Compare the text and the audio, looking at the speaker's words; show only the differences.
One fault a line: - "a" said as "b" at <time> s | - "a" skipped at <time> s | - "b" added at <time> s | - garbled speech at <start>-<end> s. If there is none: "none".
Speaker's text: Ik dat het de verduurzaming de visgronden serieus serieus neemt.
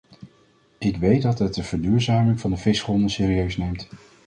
- "weet" added at 1.0 s
- "van" added at 2.4 s
- "serieus" skipped at 3.6 s